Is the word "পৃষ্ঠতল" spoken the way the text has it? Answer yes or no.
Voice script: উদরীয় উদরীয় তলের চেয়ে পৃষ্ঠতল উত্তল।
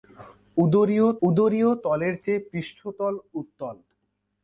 yes